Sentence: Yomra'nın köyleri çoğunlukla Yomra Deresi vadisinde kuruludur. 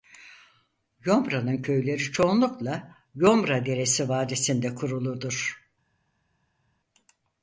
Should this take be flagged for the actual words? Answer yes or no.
no